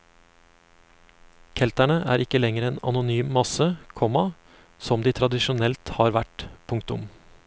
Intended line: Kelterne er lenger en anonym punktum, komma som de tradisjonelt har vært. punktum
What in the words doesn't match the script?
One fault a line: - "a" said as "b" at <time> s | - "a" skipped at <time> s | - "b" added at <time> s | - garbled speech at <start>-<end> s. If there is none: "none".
- "ikke" added at 2.2 s
- "punktum" said as "masse" at 3.4 s